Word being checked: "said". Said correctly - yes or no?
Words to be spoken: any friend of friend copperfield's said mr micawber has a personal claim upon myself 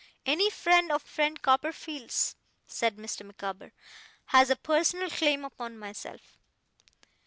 yes